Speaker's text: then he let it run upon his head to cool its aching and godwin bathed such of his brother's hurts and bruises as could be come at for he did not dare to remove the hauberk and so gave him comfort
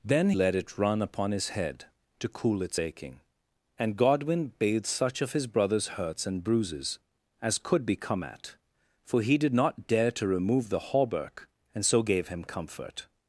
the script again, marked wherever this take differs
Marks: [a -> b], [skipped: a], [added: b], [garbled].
then [skipped: he] let it run upon his head to cool its aching and godwin bathed such of his brother's hurts and bruises as could be come at for he did not dare to remove the hauberk and so gave him comfort